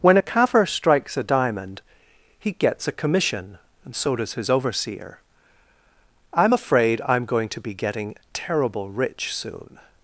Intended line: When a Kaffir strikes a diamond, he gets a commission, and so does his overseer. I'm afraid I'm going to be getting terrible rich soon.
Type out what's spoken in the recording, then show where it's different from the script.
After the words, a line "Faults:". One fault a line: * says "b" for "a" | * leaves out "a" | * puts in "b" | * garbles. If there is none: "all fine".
When a Kaffir strikes a diamond, he gets a commission, and so does his overseer. I'm afraid I'm going to be getting terrible rich soon.
Faults:
all fine